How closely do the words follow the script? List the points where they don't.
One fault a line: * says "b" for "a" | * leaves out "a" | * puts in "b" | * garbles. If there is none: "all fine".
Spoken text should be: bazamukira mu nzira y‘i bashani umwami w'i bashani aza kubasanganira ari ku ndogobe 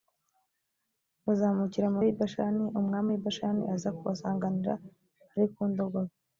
* leaves out "nzira"